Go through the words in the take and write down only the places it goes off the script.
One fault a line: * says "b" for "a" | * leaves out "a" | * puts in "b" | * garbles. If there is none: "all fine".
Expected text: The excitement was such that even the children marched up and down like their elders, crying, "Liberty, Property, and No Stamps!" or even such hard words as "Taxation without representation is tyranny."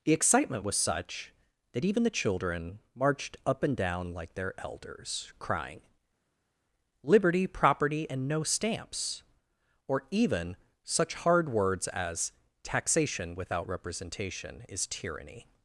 all fine